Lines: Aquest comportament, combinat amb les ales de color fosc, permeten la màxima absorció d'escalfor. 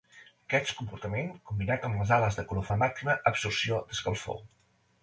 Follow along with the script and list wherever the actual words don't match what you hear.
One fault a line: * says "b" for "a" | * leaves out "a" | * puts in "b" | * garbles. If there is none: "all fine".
* leaves out "fosc permeten"